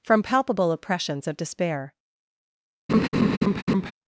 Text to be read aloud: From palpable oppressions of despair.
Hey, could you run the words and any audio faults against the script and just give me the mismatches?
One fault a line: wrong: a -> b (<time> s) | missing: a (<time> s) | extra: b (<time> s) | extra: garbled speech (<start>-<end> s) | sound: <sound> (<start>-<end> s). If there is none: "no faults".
sound: laugh (2.9-3.9 s)